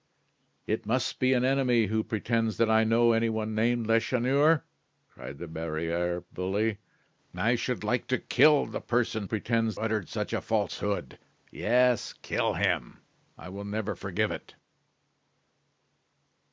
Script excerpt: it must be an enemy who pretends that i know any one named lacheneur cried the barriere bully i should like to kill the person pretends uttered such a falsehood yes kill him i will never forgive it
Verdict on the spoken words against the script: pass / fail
pass